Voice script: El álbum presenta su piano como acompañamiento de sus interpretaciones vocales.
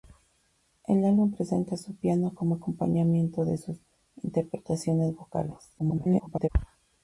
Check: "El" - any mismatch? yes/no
no